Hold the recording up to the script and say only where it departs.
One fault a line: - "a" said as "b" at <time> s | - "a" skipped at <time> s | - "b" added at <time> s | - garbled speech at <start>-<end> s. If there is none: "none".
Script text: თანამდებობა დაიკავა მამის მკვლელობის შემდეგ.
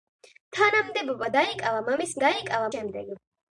- "მკვლელობის" said as "დაიკავა" at 2.2 s